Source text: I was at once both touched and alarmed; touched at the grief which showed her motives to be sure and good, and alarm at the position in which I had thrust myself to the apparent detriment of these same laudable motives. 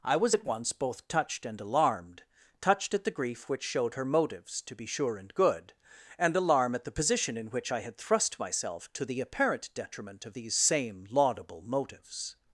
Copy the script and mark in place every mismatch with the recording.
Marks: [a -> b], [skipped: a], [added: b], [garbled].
I was at once both touched and alarmed; touched at the grief which showed her motives to be sure and good, and alarm at the position in which I had thrust myself to the apparent detriment of these same laudable motives.